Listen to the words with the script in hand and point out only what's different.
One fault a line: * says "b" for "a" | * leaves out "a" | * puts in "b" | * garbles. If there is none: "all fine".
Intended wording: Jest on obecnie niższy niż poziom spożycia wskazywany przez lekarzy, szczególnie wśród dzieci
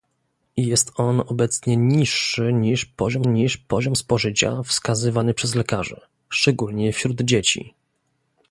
* puts in "niż poziom"